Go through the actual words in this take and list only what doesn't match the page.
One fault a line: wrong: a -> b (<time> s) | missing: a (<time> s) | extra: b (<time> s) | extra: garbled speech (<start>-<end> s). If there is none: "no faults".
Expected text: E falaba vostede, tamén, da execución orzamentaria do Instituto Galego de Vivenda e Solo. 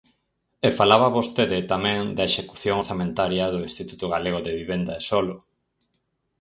no faults